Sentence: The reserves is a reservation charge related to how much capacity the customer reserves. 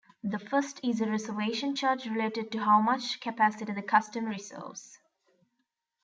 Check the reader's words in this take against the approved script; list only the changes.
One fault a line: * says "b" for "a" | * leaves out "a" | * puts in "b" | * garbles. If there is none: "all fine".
* says "first" for "reserves"